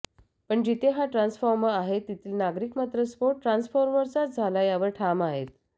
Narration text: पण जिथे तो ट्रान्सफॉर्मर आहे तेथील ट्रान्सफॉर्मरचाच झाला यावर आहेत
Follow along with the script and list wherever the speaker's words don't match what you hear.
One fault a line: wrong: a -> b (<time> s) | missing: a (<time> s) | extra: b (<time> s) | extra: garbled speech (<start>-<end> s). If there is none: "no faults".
wrong: तो -> हा (0.9 s)
extra: नागरिक मात्र स्फोट (2.4 s)
extra: ठाम (5.0 s)